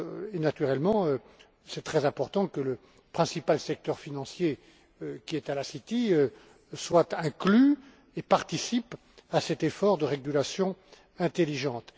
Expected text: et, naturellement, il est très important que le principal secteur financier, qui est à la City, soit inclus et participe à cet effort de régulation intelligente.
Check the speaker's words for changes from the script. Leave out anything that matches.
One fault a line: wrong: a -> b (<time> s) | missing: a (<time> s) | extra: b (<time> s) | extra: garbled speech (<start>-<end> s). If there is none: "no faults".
no faults